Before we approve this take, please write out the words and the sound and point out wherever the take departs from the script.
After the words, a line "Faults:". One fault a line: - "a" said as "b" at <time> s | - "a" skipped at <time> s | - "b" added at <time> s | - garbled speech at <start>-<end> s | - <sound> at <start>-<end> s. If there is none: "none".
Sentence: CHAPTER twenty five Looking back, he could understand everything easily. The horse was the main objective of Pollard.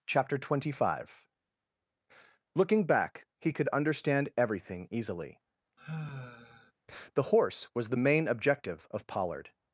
CHAPTER twenty five Looking back, he could understand everything easily. The horse was the main objective of Pollard.
Faults:
- sigh at 5.8-6.7 s